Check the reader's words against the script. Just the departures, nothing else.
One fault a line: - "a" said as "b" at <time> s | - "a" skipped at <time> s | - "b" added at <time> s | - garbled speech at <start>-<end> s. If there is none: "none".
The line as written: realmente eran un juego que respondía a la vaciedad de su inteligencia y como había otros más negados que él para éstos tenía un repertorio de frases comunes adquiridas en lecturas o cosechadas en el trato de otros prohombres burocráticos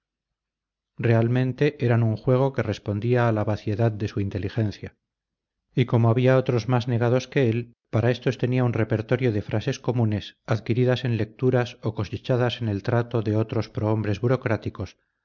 none